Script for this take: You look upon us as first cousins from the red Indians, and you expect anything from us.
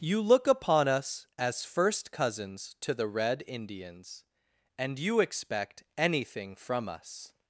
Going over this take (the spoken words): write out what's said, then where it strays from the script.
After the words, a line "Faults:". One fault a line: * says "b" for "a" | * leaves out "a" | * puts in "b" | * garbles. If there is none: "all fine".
You look upon us as first cousins to the red Indians, and you expect anything from us.
Faults:
* says "to" for "from"